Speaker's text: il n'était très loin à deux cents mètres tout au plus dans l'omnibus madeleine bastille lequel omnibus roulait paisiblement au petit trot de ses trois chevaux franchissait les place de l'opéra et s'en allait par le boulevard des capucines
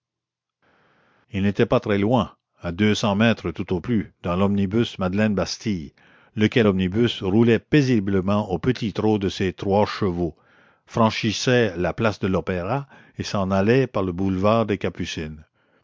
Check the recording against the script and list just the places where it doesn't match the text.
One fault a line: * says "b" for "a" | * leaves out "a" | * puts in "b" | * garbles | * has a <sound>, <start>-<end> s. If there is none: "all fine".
* puts in "pas"
* says "la" for "les"